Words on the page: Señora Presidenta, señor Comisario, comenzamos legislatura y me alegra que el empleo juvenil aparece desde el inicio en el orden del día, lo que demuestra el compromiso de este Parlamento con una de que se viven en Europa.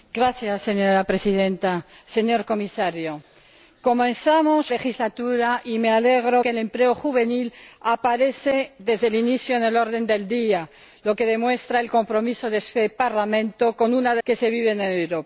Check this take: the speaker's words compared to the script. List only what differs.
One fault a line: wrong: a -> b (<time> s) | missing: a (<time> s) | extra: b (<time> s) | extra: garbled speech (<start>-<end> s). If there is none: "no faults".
no faults